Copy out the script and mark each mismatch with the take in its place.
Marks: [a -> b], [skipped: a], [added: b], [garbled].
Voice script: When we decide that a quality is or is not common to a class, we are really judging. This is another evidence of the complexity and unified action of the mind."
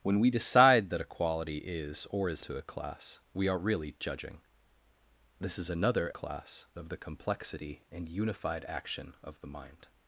When we decide that a quality is or is [skipped: not common] to a class, we are really judging. This is another [evidence -> class] of the complexity and unified action of the mind."